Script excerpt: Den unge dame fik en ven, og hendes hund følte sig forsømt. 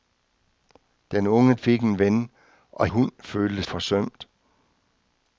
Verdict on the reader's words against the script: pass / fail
fail